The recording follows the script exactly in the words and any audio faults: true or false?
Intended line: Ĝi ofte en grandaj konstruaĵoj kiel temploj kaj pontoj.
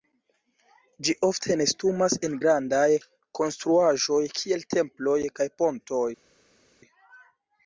false